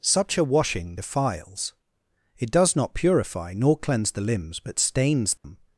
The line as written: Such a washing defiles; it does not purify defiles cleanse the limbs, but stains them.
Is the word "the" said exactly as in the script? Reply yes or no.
yes